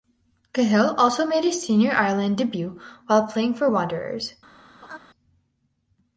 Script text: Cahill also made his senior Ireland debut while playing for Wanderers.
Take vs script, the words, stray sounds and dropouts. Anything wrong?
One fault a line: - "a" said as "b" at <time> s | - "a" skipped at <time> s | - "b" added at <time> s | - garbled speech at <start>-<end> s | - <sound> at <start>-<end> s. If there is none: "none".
- laugh at 4.8-5.0 s